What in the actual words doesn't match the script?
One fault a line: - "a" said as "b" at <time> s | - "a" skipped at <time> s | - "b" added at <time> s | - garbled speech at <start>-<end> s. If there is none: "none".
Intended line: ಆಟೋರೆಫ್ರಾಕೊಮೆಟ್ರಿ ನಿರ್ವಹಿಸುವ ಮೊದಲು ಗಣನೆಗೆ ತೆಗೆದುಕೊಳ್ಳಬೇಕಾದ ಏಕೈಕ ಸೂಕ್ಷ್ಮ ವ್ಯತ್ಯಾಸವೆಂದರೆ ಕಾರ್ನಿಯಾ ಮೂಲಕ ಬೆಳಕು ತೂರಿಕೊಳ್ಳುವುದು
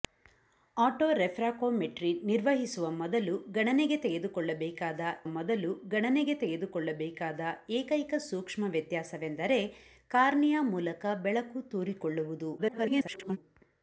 - "ಮೊದಲು ಗಣನೆಗೆ ತೆಗೆದುಕೊಳ್ಳಬೇಕಾದ" added at 5.3 s
- garbled speech at 12.6-13.4 s